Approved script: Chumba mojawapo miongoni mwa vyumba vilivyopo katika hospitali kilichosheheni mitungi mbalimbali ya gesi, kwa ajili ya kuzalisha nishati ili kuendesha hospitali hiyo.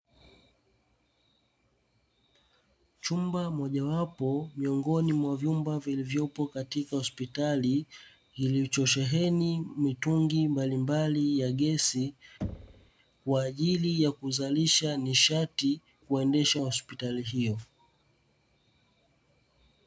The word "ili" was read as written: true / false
false